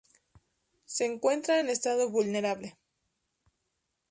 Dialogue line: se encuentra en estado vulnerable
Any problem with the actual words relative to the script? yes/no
no